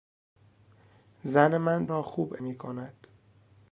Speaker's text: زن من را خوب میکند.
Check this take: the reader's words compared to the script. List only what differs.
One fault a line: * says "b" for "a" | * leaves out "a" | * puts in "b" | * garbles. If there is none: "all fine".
all fine